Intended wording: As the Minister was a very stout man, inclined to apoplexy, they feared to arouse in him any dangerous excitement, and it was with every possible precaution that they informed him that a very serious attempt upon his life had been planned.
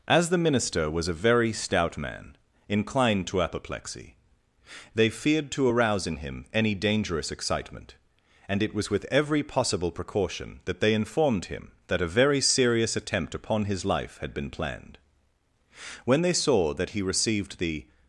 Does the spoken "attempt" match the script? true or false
true